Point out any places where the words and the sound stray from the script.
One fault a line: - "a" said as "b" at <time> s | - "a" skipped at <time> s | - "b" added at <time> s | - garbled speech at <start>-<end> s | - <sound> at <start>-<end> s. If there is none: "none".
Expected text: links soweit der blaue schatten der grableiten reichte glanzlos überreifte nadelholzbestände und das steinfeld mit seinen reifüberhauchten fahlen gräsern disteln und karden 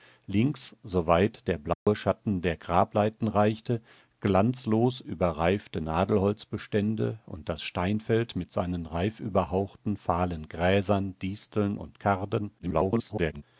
- dropout at 1.7-1.9 s
- garbled speech at 12.6-13.4 s